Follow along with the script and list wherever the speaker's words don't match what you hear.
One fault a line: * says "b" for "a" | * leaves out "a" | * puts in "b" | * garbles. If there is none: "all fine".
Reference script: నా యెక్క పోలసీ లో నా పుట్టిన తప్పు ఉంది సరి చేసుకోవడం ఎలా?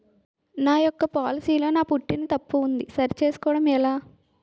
all fine